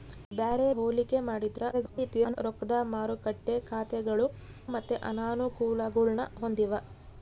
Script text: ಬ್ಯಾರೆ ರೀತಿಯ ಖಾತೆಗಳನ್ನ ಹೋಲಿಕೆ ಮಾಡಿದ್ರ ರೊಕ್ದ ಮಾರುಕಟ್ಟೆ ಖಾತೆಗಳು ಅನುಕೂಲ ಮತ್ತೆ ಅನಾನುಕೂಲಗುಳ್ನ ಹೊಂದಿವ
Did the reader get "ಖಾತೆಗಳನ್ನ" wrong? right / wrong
wrong